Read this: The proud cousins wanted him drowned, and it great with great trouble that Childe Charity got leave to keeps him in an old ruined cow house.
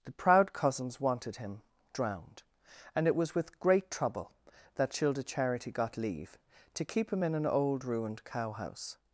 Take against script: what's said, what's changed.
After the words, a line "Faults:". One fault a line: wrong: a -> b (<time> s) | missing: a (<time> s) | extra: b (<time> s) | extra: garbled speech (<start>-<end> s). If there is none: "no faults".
The proud cousins wanted him drowned, and it was with great trouble that Childe Charity got leave to keep him in an old ruined cow house.
Faults:
wrong: great -> was (3.1 s)
wrong: keeps -> keep (6.8 s)